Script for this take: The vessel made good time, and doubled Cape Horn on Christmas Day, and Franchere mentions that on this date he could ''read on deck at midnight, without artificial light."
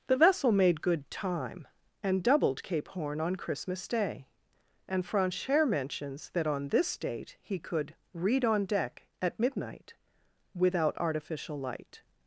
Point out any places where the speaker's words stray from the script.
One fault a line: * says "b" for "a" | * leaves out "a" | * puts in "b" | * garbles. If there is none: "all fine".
all fine